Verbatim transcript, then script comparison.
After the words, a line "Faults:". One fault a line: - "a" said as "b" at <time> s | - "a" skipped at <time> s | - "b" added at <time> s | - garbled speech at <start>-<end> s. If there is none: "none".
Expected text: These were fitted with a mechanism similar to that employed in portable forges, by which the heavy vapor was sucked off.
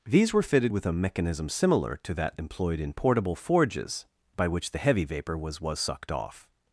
These were fitted with a mechanism similar to that employed in portable forges, by which the heavy vapor was was sucked off.
Faults:
- "was" added at 5.6 s